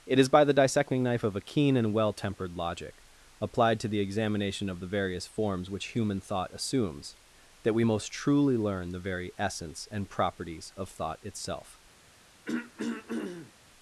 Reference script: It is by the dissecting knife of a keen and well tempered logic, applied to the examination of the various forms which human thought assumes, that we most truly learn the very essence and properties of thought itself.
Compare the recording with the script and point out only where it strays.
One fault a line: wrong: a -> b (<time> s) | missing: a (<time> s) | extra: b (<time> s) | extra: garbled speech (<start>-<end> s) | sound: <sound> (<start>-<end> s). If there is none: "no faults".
sound: throat clearing (12.5-13.5 s)